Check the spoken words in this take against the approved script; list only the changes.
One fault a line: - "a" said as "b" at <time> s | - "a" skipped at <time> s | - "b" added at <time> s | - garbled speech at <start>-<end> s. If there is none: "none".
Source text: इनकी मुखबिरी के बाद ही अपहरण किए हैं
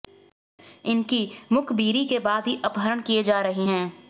- "जा रहे" added at 3.2 s